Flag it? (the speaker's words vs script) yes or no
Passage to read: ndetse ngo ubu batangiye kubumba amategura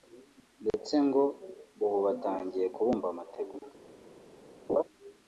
no